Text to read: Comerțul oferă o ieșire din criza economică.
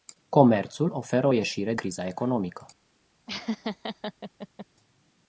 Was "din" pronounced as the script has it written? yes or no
no